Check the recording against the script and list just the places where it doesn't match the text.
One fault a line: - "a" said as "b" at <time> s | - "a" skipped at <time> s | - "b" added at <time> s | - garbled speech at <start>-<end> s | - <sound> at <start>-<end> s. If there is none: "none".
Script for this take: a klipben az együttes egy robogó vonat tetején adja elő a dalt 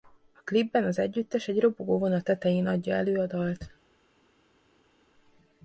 none